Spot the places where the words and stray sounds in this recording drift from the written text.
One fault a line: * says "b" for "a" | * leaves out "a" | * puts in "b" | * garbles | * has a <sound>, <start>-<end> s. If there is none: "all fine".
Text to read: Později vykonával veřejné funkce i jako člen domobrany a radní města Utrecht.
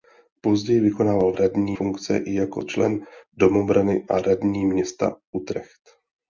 * says "radní" for "veřejné"